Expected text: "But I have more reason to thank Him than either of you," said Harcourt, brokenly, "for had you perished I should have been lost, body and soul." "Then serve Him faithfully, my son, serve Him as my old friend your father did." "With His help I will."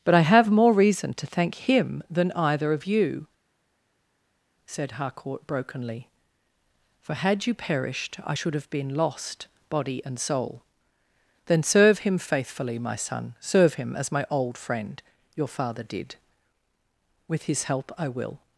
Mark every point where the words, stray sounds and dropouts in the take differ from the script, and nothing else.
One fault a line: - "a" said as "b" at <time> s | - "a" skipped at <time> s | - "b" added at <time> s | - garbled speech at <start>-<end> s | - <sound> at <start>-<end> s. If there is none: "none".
none